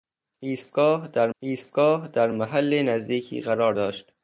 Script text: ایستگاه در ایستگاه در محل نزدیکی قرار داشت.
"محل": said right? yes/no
yes